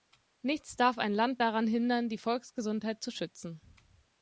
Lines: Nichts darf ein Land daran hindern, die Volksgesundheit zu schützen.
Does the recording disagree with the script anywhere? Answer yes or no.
no